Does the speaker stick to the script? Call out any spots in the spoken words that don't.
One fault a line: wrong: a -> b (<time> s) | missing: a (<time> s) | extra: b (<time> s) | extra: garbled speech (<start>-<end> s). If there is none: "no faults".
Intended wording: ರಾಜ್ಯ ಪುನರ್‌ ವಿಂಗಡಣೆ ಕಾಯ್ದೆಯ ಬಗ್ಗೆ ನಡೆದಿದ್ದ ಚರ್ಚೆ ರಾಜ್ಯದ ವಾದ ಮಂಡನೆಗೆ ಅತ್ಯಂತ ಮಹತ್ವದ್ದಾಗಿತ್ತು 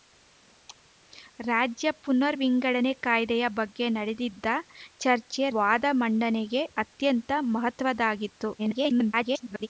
missing: ರಾಜ್ಯದ (5.4 s)
extra: garbled speech (8.6-9.7 s)